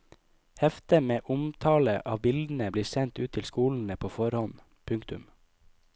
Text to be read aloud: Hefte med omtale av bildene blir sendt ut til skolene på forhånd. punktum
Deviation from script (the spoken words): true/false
false